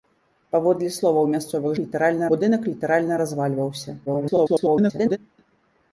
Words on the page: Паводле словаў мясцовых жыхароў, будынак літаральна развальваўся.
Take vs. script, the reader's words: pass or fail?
fail